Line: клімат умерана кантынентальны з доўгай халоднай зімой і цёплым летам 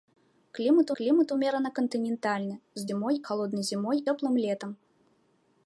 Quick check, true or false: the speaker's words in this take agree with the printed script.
false